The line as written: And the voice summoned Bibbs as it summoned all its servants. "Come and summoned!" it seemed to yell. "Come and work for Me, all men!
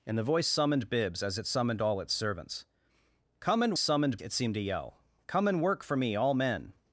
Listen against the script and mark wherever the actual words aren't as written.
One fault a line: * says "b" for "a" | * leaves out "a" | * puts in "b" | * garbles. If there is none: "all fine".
all fine